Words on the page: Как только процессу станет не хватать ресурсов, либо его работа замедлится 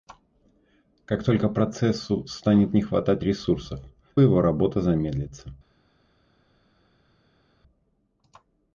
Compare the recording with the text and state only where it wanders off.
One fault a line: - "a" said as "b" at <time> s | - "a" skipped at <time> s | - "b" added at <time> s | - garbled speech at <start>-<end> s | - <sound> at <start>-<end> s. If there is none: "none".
- "либо" skipped at 3.8 s